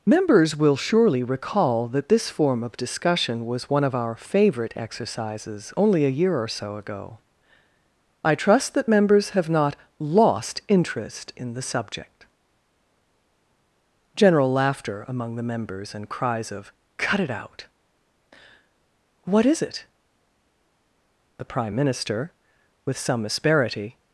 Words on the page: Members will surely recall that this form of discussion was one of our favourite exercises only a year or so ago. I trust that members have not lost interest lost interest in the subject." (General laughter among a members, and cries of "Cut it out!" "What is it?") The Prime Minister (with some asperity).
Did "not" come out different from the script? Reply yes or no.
no